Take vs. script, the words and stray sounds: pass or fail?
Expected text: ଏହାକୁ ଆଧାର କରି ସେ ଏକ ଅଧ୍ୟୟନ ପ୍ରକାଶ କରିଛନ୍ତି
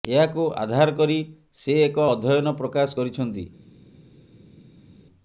pass